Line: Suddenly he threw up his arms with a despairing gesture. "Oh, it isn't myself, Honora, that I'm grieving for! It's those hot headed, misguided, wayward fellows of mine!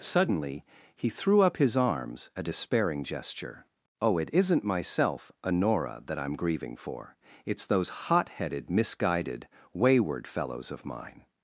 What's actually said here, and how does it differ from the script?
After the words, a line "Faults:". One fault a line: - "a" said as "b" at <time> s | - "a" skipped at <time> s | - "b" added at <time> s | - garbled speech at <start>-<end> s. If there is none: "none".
Suddenly he threw up his arms a despairing gesture. "Oh, it isn't myself, Honora, that I'm grieving for! It's those hot headed, misguided, wayward fellows of mine!
Faults:
- "with" skipped at 2.3 s